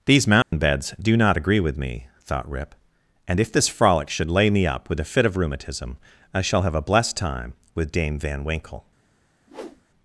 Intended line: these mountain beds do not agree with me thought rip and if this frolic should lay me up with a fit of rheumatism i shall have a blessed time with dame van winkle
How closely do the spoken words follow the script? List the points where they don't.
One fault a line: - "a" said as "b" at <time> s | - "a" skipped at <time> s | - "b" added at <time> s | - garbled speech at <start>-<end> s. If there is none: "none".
none